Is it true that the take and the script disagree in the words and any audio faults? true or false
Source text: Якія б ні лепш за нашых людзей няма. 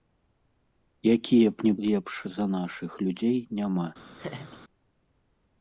true